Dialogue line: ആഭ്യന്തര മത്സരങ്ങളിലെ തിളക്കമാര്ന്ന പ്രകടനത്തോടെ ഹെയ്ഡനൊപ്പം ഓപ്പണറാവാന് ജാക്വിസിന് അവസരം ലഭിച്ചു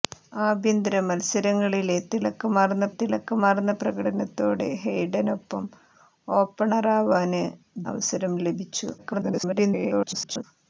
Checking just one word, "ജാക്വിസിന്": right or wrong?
wrong